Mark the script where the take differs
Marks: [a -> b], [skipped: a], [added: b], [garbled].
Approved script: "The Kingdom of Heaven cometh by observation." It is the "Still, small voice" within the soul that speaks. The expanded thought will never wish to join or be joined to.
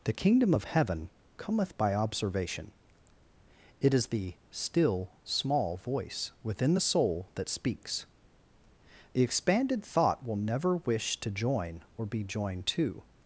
"The Kingdom of Heaven cometh by observation." It is the "Still, small voice" within the soul that speaks. The expanded thought will never wish to join or be joined to.